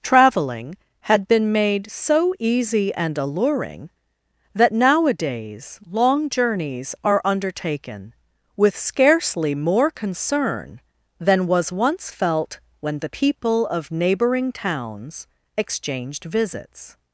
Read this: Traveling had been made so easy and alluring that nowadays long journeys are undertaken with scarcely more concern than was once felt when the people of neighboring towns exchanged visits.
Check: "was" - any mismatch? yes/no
no